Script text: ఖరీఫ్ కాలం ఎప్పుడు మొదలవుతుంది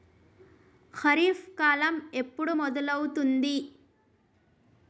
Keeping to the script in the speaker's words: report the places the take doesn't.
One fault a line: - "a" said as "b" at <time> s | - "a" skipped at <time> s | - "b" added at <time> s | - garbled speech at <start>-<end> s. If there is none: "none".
none